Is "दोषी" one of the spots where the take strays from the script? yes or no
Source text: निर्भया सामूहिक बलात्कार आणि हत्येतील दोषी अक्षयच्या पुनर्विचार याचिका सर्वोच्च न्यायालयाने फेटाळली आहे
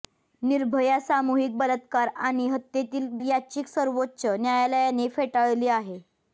yes